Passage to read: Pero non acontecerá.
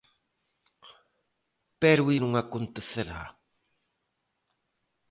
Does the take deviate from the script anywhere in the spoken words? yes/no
no